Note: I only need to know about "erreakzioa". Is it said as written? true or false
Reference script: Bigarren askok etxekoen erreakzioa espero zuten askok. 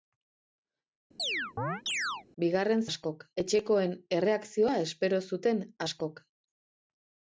true